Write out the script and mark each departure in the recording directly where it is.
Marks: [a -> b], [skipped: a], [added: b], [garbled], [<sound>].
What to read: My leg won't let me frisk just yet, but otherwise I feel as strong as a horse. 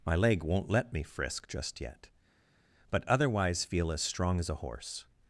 My leg won't let me frisk just yet, but otherwise [skipped: I] feel as strong as a horse.